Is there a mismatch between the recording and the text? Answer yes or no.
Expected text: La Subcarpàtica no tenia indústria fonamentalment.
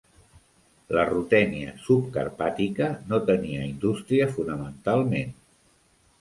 yes